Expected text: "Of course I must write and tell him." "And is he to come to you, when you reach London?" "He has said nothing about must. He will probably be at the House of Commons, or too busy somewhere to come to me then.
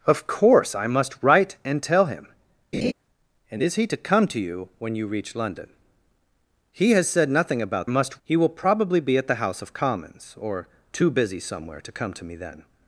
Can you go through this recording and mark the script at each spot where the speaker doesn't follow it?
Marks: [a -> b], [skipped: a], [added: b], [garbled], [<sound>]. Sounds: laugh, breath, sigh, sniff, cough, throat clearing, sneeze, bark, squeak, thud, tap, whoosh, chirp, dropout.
"Of course I must write and tell him." [laugh] "And is he to come to you, when you reach London?" "He has said nothing about must. He will probably be at the House of Commons, or too busy somewhere to come to me then.